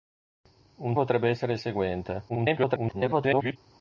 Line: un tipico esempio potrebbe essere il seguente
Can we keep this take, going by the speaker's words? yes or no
no